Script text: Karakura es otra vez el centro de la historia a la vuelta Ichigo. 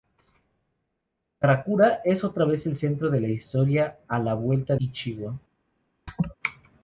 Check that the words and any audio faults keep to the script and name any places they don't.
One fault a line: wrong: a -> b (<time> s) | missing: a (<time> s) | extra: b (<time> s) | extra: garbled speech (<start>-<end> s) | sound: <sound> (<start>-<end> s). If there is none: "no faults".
sound: laugh (6.1-6.4 s)